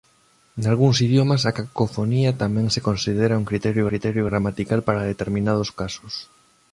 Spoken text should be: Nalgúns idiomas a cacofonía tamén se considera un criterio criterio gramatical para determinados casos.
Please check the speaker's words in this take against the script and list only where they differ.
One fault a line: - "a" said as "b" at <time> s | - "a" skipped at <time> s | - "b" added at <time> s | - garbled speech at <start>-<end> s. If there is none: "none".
none